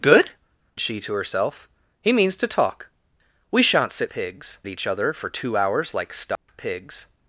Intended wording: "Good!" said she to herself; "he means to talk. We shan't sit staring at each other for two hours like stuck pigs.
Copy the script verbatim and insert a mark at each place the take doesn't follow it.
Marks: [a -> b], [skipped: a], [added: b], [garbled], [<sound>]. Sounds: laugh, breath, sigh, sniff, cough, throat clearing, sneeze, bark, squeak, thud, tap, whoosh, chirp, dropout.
"Good!" [skipped: said] she to herself; "he means to talk. We shan't sit [staring -> pigs] at each other for two hours like stuck [dropout] pigs.